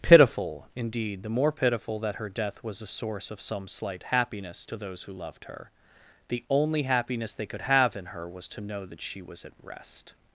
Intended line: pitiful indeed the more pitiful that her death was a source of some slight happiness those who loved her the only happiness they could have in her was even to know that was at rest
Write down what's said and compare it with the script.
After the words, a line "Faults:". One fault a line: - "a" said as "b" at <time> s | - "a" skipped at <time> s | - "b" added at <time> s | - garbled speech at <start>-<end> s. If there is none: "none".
pitiful indeed the more pitiful that her death was a source of some slight happiness to those who loved her the only happiness they could have in her was to know that she was at rest
Faults:
- "to" added at 4.6 s
- "even" skipped at 8.5 s
- "she" added at 9.0 s